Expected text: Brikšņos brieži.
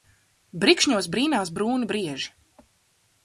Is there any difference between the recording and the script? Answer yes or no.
yes